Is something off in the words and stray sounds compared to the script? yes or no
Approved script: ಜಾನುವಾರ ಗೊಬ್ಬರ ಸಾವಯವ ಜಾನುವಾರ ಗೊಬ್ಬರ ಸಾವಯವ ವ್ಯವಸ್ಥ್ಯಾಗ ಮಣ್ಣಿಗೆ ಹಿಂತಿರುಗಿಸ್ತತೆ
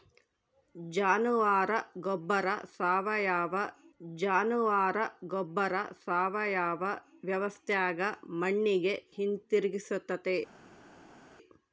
no